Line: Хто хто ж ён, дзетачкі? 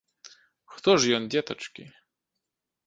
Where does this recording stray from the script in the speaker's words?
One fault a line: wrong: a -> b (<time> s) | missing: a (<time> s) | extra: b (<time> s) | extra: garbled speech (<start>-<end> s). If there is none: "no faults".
missing: хто (0.9 s)